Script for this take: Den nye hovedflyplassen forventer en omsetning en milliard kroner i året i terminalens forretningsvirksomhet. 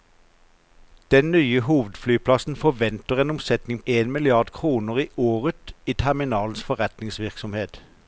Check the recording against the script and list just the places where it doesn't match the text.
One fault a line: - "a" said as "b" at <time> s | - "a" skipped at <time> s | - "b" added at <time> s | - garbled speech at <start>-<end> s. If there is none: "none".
none